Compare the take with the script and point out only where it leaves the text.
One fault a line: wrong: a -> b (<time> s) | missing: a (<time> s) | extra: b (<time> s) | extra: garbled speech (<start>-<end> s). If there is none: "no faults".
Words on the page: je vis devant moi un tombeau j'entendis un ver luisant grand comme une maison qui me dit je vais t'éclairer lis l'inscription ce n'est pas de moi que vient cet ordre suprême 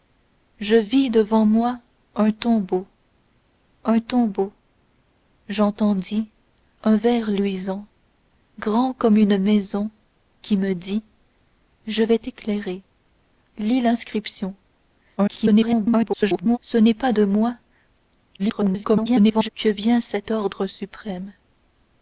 extra: un tombeau (3.8 s)
extra: garbled speech (15.2-16.6 s)
extra: garbled speech (18.4-19.5 s)